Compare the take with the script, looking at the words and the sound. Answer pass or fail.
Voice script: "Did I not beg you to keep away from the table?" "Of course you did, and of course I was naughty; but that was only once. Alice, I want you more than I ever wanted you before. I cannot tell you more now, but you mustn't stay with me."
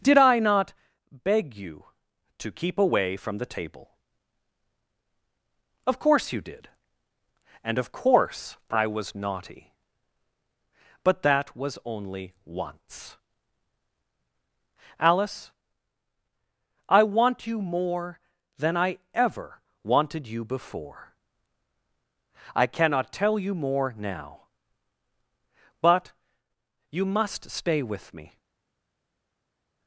fail